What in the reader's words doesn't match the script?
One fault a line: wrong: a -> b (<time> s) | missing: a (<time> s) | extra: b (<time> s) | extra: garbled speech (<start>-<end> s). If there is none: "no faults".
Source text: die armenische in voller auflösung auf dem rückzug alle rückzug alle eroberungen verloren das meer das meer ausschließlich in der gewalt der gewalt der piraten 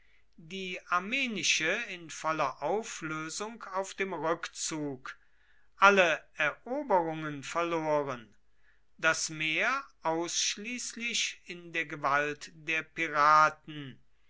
missing: rückzug alle (6.3 s)
missing: das meer (9.8 s)
missing: gewalt der (12.8 s)